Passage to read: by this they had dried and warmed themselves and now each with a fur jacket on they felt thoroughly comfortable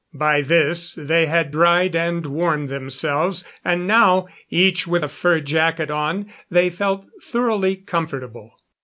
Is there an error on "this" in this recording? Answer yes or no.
no